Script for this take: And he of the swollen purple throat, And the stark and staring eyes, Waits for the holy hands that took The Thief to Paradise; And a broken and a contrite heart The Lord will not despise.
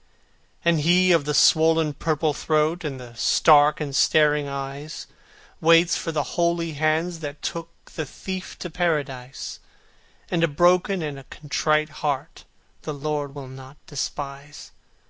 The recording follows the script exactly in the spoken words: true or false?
true